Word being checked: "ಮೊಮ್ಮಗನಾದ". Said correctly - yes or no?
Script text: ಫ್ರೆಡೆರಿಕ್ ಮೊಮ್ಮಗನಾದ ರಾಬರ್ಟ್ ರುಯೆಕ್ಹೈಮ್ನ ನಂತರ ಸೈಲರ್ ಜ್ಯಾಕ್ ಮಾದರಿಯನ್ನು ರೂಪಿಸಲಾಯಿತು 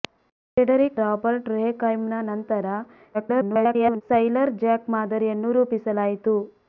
no